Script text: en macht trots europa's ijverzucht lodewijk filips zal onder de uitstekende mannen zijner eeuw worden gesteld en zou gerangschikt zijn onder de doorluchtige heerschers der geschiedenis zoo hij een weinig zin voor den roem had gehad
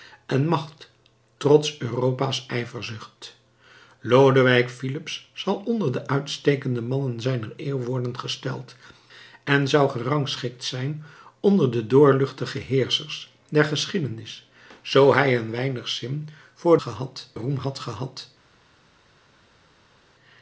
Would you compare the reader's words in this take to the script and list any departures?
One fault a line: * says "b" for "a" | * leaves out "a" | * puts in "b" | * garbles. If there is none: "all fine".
* says "gehad" for "den"